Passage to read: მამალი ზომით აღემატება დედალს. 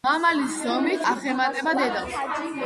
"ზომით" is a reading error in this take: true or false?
false